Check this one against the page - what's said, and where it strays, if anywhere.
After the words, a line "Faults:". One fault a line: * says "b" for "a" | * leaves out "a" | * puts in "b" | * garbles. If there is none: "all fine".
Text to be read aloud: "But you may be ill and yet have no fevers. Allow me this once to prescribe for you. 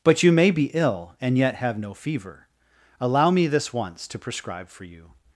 "But you may be ill and yet have no fever. Allow me this once to prescribe for you.
Faults:
* says "fever" for "fevers"